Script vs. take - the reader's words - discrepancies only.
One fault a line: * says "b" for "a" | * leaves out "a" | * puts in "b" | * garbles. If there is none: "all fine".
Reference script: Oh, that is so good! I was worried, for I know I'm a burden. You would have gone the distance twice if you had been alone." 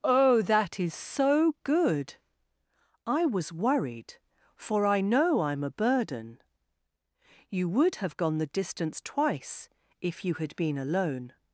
all fine